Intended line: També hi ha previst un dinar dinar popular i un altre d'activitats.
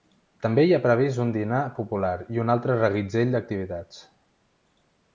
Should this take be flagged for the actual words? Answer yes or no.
yes